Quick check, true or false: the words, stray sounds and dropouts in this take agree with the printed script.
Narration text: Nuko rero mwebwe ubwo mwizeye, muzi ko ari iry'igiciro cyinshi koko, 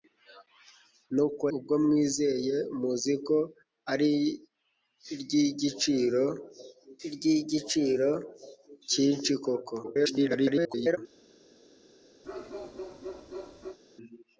false